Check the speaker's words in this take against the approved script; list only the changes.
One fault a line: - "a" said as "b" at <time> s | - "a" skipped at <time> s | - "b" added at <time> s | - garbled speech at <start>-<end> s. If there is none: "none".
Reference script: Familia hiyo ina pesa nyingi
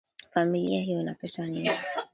none